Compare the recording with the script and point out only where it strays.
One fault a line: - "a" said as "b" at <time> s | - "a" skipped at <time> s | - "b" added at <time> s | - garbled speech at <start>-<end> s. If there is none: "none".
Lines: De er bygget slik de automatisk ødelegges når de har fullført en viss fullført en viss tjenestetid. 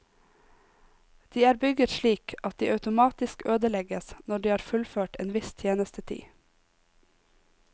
- "at" added at 2.4 s
- "fullført en viss" skipped at 5.5 s